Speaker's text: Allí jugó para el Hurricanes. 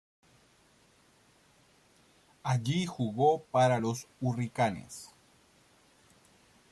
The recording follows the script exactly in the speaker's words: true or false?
false